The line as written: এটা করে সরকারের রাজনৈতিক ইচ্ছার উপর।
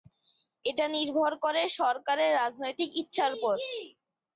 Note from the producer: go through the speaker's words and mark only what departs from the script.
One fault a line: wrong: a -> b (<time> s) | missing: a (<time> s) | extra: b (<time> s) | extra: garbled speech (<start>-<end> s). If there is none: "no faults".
extra: নির্ভর (0.9 s)